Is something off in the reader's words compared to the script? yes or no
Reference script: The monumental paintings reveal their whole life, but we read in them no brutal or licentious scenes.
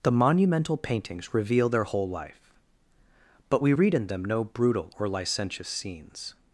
no